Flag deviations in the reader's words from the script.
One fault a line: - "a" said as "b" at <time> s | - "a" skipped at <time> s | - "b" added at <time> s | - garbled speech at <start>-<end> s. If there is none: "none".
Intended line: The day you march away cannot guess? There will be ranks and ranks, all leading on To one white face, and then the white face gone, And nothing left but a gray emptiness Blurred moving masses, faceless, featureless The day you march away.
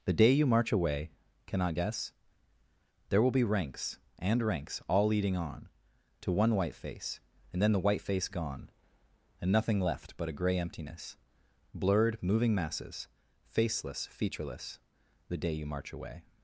none